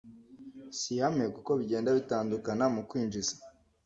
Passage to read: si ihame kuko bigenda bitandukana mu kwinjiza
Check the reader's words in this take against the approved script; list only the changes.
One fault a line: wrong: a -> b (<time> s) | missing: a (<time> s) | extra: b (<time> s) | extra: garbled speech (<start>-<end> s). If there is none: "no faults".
no faults